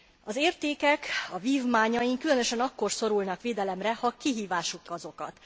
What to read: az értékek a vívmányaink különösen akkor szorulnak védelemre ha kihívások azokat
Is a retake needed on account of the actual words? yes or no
no